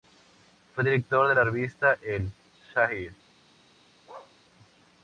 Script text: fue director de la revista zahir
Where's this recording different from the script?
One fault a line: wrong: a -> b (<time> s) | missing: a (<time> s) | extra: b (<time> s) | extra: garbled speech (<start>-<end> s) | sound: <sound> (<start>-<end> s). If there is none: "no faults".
extra: el (2.0 s)
sound: bark (4.1-4.4 s)